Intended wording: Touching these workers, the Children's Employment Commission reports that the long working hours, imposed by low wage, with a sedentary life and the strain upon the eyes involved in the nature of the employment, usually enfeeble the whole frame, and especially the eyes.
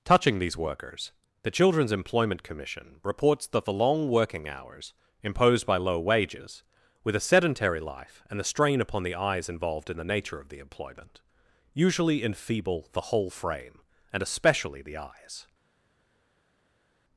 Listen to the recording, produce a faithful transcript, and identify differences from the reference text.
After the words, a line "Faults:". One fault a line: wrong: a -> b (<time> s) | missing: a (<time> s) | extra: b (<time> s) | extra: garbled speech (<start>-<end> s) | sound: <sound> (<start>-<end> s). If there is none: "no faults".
Touching these workers, the Children's Employment Commission reports that the long working hours, imposed by low wages, with a sedentary life and the strain upon the eyes involved in the nature of the employment, usually enfeeble the whole frame, and especially the eyes.
Faults:
wrong: wage -> wages (6.0 s)